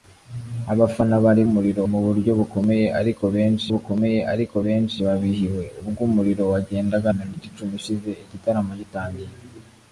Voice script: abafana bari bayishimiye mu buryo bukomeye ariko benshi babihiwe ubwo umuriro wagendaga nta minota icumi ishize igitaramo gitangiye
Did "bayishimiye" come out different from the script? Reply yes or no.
yes